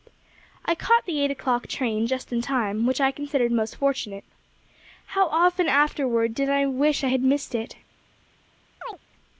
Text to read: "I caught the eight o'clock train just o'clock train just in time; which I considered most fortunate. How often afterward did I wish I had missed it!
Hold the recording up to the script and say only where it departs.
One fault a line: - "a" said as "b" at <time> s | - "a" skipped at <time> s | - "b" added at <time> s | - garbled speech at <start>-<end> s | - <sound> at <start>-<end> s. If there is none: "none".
- "o'clock train just" skipped at 2.3 s
- chirp at 8.8-9.0 s